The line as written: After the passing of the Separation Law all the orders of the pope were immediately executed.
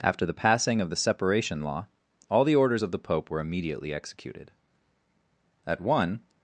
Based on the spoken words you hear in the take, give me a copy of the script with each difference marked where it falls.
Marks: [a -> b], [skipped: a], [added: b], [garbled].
After the passing of the Separation Law all the orders of the pope were immediately executed. [added: At one]